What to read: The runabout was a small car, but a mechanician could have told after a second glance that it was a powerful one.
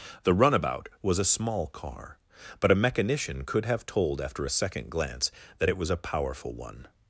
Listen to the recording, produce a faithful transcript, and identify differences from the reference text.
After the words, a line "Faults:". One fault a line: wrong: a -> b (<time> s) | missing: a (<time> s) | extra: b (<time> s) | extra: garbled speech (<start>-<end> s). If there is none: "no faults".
The runabout was a small car, but a mechanician could have told after a second glance that it was a powerful one.
Faults:
no faults